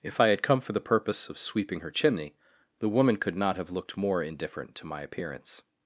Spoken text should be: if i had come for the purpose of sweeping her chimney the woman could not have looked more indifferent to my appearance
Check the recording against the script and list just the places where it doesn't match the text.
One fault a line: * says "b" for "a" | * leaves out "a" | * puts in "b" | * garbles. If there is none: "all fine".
all fine